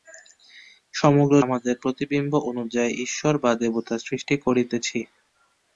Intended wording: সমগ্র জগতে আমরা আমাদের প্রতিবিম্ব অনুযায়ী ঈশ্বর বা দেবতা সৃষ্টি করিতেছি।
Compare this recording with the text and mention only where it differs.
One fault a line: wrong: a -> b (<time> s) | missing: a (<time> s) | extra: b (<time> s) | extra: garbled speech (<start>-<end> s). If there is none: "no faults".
missing: জগতে আমরা (1.4 s)